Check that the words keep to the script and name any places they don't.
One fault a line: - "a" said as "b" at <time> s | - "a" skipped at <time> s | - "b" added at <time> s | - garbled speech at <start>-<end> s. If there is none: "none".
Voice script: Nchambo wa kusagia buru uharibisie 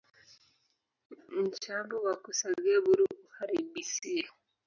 none